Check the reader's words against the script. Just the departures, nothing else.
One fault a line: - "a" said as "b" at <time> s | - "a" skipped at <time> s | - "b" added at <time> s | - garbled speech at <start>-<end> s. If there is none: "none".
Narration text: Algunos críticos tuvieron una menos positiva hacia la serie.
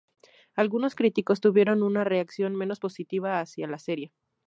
- "reacción" added at 2.0 s